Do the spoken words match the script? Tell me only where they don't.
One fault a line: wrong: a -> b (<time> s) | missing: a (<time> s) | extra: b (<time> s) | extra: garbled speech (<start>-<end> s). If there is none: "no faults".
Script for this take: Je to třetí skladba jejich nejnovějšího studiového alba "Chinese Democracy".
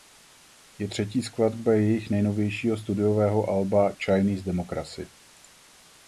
missing: to (0.9 s)